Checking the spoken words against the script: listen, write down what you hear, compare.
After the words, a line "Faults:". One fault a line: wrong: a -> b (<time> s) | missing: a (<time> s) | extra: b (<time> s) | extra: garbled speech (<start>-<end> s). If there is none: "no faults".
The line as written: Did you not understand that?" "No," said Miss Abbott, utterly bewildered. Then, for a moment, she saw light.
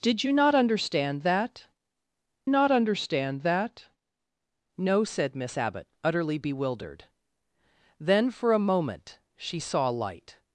Did you not understand that not understand that?" "No," said Miss Abbott, utterly bewildered. Then, for a moment, she saw light.
Faults:
extra: not understand that (2.5 s)